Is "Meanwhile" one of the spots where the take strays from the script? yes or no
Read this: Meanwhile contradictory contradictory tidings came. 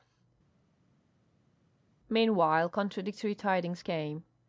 no